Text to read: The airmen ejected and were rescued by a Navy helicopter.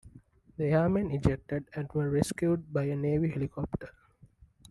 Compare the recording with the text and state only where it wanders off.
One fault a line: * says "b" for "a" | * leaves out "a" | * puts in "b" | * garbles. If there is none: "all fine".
all fine